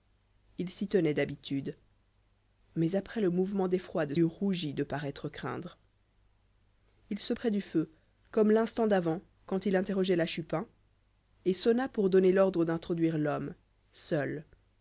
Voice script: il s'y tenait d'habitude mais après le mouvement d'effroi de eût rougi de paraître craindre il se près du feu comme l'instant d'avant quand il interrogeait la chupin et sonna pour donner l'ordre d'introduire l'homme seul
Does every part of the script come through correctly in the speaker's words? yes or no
yes